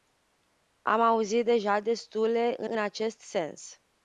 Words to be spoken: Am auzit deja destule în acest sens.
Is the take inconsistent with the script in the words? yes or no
yes